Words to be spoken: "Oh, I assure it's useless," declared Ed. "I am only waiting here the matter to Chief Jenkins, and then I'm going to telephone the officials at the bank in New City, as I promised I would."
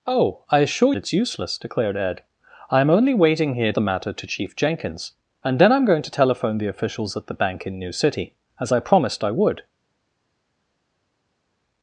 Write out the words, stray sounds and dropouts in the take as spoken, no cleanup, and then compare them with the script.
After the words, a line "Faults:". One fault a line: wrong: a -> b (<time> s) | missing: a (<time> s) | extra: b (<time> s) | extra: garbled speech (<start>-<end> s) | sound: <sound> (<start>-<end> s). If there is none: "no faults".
"Oh, I assure it's useless," declared Ed. "I am only waiting here the matter to Chief Jenkins, and then I'm going to telephone the officials at the bank in New City, as I promised I would."
Faults:
no faults